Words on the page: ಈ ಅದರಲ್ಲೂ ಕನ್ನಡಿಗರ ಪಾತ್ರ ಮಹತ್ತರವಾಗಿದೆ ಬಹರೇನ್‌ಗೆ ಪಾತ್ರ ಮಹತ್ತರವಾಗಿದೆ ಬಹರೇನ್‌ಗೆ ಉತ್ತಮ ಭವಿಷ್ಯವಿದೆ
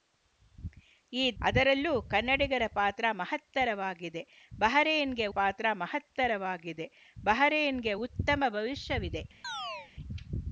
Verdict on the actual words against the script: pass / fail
pass